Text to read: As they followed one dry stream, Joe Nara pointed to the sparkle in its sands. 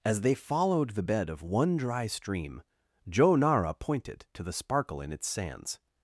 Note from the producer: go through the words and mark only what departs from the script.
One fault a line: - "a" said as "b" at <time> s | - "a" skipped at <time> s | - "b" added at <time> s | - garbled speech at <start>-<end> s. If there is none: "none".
- "the bed of" added at 0.9 s